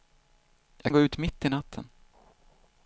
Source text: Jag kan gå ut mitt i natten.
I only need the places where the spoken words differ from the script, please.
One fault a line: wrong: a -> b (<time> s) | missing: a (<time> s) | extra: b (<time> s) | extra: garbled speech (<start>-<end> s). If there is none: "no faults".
missing: kan (0.9 s)